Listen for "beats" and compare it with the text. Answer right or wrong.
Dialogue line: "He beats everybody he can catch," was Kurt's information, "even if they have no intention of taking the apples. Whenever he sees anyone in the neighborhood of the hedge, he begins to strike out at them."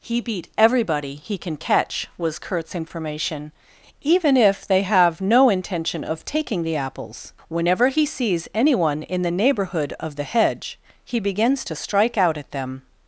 wrong